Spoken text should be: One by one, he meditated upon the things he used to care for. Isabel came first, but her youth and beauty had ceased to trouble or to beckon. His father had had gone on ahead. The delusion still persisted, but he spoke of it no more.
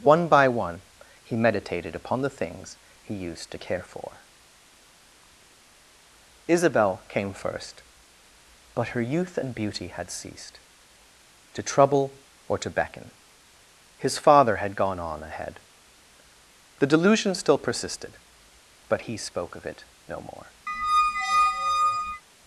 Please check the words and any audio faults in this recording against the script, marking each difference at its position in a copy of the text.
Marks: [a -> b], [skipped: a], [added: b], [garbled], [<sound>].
One by one, he meditated upon the things he used to care for. Isabel came first, but her youth and beauty had ceased to trouble or to beckon. His father had [skipped: had] gone on ahead. The delusion still persisted, but he spoke of it no more. [squeak]